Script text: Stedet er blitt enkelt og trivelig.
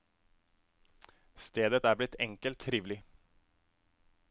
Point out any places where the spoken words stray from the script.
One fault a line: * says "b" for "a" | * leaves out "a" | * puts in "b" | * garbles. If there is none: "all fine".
* leaves out "og"